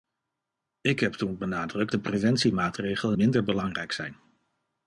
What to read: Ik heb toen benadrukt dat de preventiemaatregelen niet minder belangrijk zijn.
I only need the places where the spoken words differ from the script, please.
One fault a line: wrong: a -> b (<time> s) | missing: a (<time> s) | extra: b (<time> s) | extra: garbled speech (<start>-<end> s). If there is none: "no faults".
missing: dat (1.9 s)
missing: niet (3.2 s)